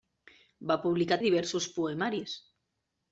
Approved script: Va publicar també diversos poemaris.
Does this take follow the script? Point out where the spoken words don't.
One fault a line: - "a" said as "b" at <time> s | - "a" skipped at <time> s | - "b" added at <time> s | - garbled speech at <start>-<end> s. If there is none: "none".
- "també" skipped at 1.2 s